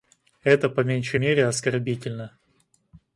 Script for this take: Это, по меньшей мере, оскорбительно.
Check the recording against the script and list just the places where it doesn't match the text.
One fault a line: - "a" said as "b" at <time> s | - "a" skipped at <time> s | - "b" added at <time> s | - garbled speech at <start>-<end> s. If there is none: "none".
none